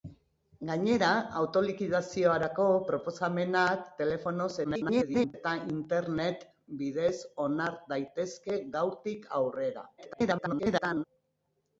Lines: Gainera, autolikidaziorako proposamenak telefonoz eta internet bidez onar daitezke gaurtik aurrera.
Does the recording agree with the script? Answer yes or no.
no